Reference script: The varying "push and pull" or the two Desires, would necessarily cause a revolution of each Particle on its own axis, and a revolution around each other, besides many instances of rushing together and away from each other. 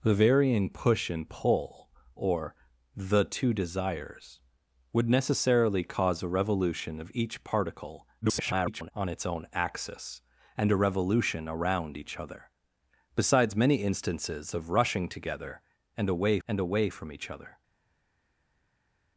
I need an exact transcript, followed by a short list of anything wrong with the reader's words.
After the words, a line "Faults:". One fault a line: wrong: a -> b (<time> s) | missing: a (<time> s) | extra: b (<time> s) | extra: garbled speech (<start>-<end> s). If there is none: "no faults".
The varying "push and pull" or the two Desires, would necessarily cause a revolution of each Particle [garbled] on its own axis, and a revolution around each other, besides many instances of rushing together and away and away from each other.
Faults:
extra: garbled speech (8.2-8.9 s)
extra: and away (16.5 s)